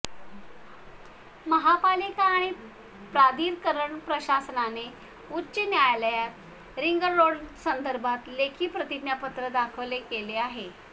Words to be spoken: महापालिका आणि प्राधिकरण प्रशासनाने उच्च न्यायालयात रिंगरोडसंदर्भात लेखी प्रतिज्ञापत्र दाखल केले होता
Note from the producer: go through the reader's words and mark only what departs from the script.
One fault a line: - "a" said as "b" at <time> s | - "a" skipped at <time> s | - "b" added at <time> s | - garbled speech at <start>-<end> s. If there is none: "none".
- "होता" said as "आहे" at 10.4 s